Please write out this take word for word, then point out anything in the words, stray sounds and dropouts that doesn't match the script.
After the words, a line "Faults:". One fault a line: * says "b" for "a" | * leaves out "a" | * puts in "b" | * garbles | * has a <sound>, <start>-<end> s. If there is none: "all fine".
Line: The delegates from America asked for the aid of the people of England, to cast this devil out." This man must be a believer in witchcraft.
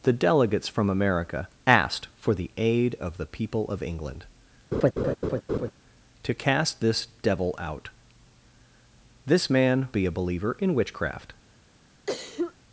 The delegates from America asked for the aid of the people of England, to cast this devil out." This man be a believer in witchcraft.
Faults:
* has a laugh, 4.7-5.7 s
* leaves out "must"
* has a cough, 12.1-12.5 s